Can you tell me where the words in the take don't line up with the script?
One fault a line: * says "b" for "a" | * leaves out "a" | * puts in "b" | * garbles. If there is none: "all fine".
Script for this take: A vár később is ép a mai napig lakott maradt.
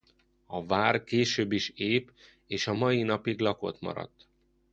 * puts in "és"